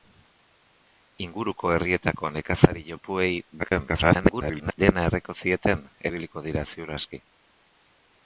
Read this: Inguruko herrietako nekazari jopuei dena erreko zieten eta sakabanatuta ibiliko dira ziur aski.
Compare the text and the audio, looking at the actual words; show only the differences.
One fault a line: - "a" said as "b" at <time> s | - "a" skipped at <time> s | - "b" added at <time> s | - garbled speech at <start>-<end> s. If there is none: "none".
- garbled speech at 3.6-4.8 s
- "eta sakabanatuta" skipped at 5.8 s